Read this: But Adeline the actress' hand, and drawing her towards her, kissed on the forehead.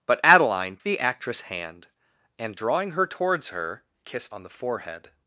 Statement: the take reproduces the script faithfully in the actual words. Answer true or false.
true